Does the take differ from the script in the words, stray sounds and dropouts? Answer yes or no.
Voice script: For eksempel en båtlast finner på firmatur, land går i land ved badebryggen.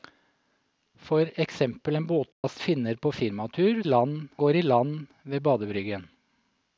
yes